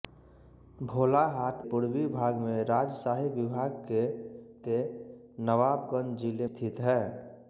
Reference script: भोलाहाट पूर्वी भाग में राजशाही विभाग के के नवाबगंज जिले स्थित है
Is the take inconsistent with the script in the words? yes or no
no